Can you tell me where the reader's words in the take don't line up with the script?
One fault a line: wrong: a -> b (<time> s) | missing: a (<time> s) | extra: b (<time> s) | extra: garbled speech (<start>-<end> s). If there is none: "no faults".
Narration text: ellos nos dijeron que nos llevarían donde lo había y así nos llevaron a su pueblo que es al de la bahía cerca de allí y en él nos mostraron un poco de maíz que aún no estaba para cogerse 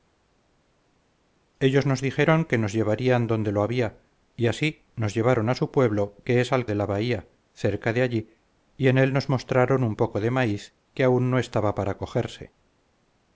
no faults